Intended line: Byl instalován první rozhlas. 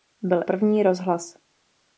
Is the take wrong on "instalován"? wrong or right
wrong